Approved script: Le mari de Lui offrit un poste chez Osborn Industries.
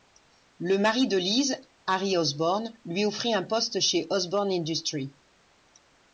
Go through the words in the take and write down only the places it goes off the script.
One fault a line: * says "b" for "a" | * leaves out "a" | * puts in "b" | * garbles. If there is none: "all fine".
* puts in "Liz Harry Osborn"